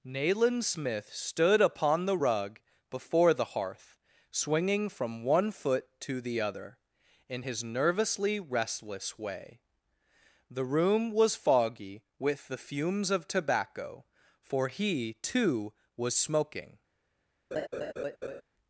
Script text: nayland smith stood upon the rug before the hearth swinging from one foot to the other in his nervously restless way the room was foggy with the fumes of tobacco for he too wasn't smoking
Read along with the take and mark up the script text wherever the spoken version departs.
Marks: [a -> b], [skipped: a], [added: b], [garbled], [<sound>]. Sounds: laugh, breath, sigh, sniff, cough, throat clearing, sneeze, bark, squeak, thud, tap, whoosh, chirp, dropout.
nayland smith stood upon the rug before the hearth swinging from one foot to the other in his nervously restless way the room was foggy with the fumes of tobacco for he too [wasn't -> was] smoking [laugh]